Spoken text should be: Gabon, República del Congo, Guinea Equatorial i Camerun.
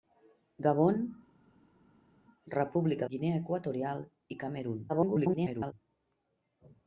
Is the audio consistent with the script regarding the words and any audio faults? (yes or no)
no